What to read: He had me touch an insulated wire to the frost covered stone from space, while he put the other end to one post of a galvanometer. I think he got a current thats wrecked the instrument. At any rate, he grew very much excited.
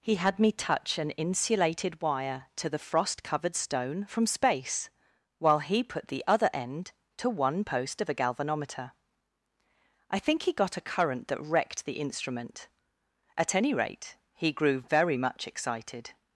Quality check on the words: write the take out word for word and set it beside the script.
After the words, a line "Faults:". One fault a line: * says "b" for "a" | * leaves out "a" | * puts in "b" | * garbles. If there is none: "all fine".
He had me touch an insulated wire to the frost covered stone from space, while he put the other end to one post of a galvanometer. I think he got a current that wrecked the instrument. At any rate, he grew very much excited.
Faults:
* says "that" for "thats"